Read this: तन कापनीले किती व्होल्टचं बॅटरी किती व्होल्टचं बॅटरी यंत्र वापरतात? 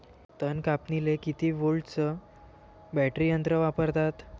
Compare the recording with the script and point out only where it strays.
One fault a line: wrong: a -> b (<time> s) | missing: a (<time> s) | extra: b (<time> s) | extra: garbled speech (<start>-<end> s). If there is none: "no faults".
missing: किती व्होल्टचं बॅटरी (3.3 s)